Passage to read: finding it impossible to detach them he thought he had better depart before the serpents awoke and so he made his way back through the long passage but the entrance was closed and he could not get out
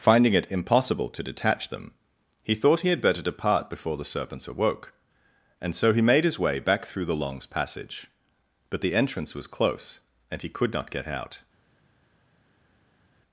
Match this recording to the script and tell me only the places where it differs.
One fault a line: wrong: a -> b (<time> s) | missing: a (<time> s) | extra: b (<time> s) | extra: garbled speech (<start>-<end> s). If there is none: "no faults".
wrong: long -> longs (7.2 s)
wrong: closed -> close (9.4 s)